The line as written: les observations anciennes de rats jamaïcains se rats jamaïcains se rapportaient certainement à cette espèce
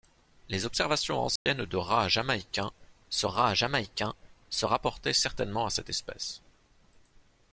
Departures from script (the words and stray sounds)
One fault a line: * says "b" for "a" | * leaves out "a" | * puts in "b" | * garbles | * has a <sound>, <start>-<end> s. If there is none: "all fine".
* has a dropout, 1.4-1.5 s